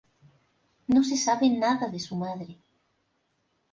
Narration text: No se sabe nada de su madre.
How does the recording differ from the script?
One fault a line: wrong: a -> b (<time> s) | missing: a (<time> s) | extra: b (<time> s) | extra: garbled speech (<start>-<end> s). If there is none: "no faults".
no faults